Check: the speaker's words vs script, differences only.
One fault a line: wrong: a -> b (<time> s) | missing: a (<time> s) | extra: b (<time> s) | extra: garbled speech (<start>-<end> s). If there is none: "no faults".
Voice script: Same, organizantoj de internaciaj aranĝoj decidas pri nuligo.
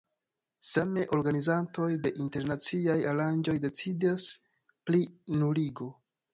no faults